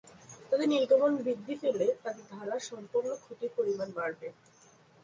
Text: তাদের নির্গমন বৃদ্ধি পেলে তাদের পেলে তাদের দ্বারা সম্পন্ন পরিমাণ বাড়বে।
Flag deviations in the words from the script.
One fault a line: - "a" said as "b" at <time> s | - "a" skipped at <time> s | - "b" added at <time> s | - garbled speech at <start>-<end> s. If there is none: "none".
- "পেলে তাদের" skipped at 2.2 s
- "ক্ষতির" added at 3.2 s